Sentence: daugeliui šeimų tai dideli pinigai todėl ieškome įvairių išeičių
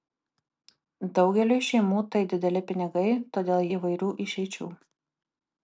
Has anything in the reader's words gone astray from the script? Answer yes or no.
yes